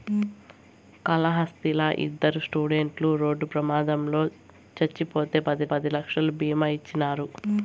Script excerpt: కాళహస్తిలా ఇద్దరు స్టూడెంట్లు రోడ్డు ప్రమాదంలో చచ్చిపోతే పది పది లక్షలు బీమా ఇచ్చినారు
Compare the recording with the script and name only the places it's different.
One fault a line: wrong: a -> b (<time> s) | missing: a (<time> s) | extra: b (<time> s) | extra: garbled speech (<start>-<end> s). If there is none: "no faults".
no faults